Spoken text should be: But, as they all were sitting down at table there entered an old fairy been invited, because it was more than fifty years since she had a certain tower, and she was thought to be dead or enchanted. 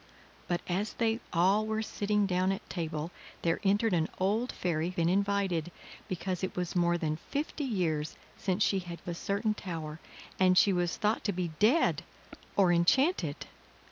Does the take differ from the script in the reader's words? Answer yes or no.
no